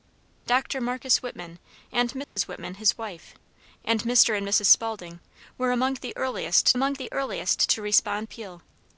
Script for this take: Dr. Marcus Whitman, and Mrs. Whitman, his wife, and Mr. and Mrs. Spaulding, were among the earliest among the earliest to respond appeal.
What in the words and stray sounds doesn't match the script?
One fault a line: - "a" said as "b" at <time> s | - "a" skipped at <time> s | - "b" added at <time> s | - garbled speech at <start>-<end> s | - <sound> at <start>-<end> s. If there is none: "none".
- dropout at 2.2-2.4 s